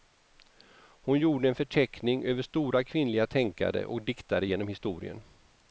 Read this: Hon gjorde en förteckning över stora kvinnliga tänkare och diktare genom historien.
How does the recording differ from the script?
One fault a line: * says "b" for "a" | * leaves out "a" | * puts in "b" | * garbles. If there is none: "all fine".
all fine